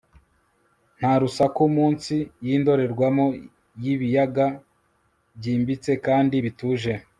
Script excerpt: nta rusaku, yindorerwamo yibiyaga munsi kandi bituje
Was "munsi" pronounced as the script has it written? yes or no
no